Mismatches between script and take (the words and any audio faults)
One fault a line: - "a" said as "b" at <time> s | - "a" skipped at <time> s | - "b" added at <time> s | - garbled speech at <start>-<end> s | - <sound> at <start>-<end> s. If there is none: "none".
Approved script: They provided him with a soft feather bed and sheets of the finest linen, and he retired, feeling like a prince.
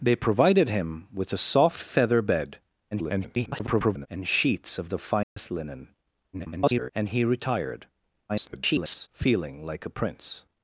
- garbled speech at 2.9-4.1 s
- dropout at 5.2-5.4 s
- garbled speech at 6.3-6.9 s
- garbled speech at 8.3-9.1 s